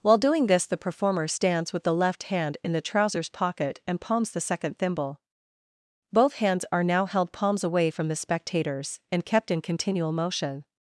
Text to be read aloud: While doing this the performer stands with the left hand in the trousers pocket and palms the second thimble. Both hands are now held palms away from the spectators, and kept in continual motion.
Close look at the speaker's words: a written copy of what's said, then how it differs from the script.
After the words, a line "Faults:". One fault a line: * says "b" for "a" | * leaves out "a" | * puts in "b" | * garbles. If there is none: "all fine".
While doing this the performer stands with the left hand in the trousers pocket and palms the second thimble. Both hands are now held palms away from the spectators, and kept in continual motion.
Faults:
all fine